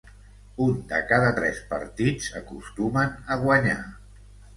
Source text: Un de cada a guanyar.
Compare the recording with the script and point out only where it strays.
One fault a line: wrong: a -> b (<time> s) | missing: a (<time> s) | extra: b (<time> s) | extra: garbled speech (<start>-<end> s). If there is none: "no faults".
extra: tres partits acostumen (1.4 s)